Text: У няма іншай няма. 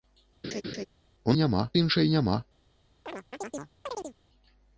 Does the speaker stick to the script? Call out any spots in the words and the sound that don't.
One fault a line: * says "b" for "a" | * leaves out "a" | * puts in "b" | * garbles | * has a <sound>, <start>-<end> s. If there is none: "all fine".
* has a laugh, 0.4-0.9 s
* has a chirp, 3.1-4.2 s